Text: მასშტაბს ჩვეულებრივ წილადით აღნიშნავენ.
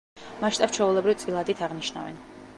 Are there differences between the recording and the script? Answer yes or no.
no